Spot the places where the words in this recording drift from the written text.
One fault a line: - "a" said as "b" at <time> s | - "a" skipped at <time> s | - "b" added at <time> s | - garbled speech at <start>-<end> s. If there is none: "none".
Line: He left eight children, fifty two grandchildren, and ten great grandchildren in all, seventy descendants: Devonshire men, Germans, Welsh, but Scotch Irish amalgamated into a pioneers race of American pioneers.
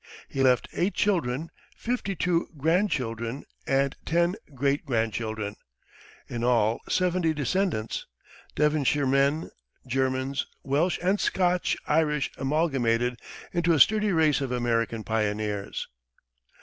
- "but" said as "and" at 11.0 s
- "pioneers" said as "sturdy" at 13.8 s